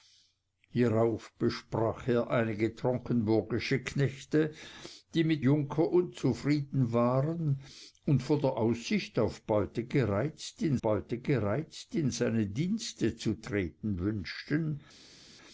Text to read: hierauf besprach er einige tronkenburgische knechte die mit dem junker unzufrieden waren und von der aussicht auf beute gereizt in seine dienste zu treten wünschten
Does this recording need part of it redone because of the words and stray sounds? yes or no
yes